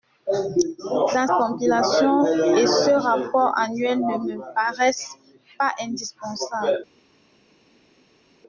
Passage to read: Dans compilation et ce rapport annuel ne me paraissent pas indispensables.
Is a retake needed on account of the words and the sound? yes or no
no